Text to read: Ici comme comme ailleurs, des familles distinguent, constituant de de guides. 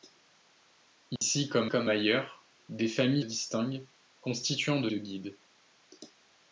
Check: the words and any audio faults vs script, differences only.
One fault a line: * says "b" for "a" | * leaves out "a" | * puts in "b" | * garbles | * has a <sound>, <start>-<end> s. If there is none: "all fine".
* has a dropout, 1.2-1.2 s